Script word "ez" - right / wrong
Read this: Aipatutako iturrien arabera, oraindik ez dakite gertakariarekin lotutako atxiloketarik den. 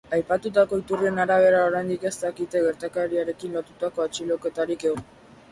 right